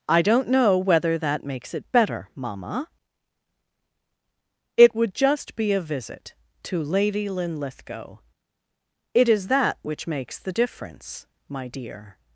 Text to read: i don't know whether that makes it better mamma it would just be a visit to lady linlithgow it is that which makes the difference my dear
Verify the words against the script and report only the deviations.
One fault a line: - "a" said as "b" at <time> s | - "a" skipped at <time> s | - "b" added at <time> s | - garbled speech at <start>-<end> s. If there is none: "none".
none